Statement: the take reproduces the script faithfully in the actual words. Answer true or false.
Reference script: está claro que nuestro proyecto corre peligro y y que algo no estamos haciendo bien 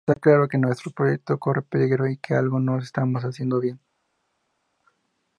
false